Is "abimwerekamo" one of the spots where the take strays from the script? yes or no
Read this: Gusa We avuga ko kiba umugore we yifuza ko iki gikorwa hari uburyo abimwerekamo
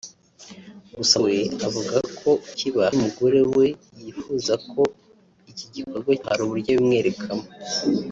no